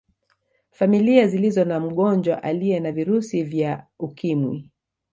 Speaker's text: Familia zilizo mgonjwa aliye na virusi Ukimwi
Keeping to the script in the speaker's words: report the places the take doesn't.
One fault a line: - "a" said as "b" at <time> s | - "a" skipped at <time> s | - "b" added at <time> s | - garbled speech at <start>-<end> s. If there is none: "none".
- "na" added at 1.6 s
- "vya" added at 3.4 s